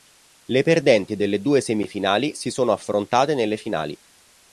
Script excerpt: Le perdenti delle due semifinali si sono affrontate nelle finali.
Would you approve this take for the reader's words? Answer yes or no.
yes